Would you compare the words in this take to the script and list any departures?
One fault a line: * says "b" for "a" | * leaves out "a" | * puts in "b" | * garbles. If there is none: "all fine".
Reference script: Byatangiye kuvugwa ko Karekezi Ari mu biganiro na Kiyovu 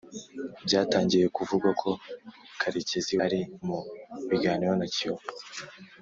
all fine